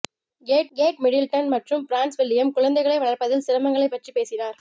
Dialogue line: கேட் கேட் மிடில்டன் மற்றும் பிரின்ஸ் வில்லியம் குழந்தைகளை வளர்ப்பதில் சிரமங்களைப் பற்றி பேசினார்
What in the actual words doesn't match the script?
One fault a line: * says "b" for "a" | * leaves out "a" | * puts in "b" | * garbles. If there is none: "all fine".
all fine